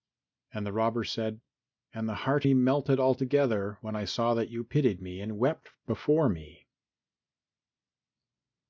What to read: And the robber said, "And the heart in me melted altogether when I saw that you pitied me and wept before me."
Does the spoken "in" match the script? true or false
false